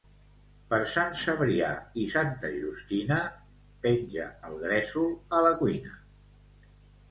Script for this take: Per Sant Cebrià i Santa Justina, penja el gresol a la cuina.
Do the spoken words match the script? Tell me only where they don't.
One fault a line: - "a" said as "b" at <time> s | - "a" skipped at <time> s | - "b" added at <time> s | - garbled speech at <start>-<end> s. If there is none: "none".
none